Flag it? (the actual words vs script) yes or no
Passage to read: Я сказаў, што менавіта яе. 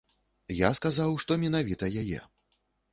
no